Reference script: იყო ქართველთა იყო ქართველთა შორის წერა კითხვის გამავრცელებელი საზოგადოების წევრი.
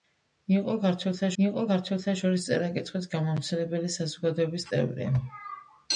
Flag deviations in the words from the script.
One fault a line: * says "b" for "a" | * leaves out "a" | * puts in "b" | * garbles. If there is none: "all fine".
all fine